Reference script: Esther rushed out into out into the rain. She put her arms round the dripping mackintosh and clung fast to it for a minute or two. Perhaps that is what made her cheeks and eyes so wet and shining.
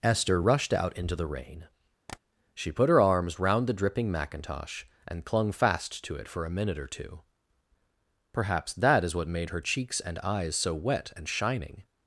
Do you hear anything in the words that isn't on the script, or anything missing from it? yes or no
yes